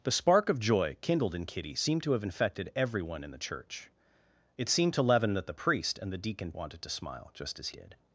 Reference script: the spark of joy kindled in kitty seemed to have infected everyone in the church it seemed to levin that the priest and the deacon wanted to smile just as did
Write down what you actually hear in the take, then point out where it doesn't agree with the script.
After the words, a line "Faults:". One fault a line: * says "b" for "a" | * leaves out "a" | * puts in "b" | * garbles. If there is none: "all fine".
the spark of joy kindled in kitty seemed to have infected everyone in the church it seemed to levin that the priest and the deacon wanted to smile just as did
Faults:
all fine